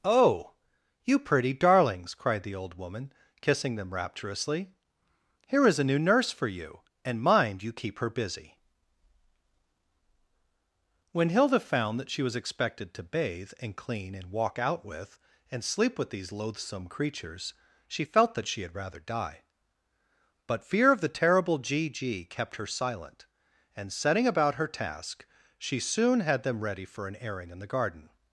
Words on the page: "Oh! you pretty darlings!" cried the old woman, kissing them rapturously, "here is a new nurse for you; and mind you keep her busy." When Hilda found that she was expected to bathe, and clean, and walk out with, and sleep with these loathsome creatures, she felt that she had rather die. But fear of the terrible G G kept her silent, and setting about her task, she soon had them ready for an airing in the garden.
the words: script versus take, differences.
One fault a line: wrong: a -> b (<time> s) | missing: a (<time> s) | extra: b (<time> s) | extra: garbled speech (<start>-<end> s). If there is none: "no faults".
no faults